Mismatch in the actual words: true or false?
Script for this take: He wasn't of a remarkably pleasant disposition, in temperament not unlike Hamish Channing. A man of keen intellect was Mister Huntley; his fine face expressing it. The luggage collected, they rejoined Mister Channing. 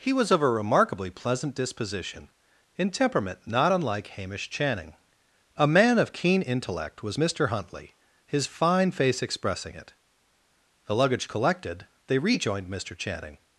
true